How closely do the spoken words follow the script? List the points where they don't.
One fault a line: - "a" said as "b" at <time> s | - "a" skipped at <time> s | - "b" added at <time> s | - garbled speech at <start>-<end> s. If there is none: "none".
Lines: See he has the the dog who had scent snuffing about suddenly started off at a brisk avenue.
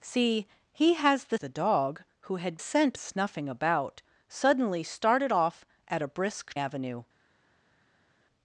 none